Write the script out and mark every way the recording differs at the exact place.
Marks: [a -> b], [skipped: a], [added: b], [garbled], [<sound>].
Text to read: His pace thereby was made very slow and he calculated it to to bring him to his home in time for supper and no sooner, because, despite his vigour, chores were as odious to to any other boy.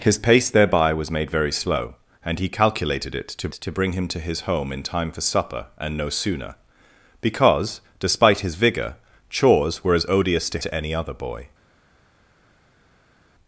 His pace thereby was made very slow and he calculated it to to bring him to his home in time for supper and no sooner, because, despite his vigour, chores were as odious to to any other boy.